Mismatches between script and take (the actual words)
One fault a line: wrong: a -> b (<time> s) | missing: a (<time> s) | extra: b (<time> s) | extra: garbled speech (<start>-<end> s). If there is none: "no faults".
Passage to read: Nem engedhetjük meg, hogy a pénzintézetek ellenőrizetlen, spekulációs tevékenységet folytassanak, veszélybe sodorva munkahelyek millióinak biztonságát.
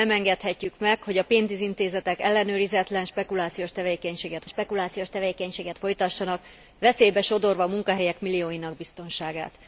extra: spekulációs tevékenységet (4.5 s)